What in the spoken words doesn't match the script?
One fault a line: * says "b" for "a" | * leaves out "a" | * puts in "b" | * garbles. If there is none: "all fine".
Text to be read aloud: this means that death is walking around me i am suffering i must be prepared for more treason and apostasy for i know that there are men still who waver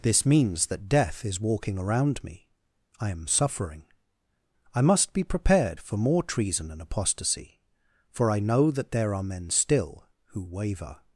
all fine